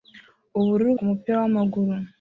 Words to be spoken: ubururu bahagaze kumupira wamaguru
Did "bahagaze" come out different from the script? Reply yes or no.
yes